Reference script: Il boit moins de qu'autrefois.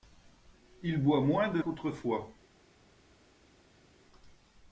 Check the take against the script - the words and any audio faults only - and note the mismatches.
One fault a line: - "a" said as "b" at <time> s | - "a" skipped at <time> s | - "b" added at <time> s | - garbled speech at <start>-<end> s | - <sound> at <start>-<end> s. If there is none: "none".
none